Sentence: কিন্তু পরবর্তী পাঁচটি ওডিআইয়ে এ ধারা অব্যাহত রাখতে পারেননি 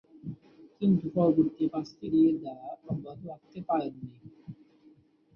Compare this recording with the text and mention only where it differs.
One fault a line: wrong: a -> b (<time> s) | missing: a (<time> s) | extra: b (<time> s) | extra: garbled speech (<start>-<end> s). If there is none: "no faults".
missing: ওডিআইয়ে (2.0 s)